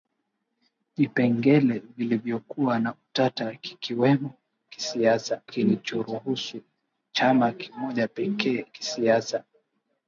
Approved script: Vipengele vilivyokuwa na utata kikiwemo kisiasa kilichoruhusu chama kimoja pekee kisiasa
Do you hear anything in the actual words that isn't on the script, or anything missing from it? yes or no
no